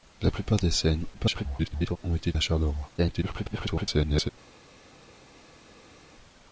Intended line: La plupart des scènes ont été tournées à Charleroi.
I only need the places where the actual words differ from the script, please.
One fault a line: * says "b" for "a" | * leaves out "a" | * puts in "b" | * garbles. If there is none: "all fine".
* garbles
* leaves out "tournées"
* garbles